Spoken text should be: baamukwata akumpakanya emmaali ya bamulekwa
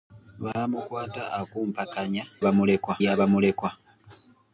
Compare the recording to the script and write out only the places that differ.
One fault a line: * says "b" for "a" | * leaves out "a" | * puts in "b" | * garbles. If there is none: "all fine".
* says "bamulekwa" for "emmaali"